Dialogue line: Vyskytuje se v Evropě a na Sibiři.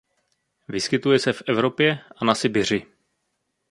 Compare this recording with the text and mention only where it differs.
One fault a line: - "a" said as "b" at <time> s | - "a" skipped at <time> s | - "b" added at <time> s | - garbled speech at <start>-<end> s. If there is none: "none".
none